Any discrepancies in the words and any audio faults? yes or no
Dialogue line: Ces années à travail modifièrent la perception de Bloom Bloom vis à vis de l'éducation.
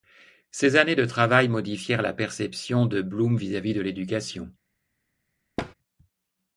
yes